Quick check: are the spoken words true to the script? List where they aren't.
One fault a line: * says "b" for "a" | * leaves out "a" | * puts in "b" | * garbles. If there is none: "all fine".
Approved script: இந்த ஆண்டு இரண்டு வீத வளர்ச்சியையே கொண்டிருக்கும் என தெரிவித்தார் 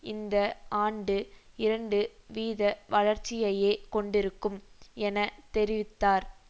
all fine